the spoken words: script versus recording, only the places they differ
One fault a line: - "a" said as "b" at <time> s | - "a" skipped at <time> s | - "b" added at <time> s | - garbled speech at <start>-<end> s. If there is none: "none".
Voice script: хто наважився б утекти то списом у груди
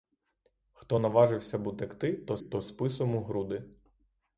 - "то" added at 2.4 s